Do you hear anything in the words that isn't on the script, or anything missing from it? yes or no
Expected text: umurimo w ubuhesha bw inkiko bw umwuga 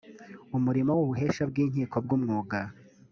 no